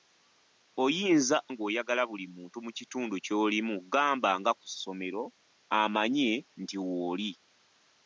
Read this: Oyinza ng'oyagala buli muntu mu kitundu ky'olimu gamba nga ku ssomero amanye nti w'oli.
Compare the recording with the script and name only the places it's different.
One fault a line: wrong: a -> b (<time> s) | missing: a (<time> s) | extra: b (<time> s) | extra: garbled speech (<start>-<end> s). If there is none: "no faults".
no faults